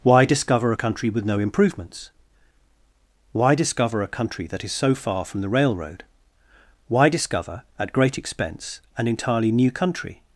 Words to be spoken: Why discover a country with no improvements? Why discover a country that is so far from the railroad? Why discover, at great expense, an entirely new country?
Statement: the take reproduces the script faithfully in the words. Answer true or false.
true